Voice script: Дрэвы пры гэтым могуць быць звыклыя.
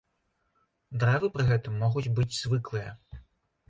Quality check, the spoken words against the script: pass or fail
pass